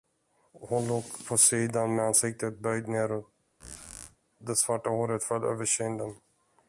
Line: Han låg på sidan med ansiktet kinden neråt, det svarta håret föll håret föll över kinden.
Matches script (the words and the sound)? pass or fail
fail